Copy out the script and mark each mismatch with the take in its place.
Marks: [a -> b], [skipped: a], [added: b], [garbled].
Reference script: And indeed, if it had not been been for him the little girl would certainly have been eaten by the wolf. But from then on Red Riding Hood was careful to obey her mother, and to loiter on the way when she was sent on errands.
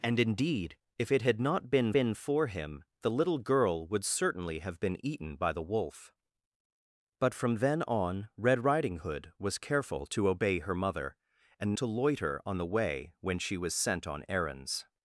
And indeed, if it had not been been for him the little girl would certainly have been eaten by the wolf. But from then on Red Riding Hood was careful to obey her mother, and to loiter on the way when she was sent on errands.